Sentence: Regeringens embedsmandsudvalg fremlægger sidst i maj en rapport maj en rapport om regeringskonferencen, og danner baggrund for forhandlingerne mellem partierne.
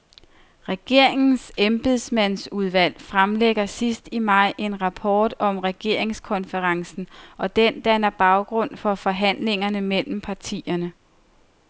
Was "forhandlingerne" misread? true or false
false